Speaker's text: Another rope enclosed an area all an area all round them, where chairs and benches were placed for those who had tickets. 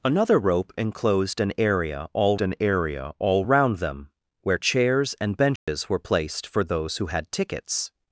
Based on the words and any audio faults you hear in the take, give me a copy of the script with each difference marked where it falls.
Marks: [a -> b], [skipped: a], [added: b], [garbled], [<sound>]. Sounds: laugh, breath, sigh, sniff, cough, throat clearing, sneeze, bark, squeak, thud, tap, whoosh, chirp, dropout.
Another rope enclosed an area all an area all round them, where chairs and benches [dropout] were placed for those who had tickets.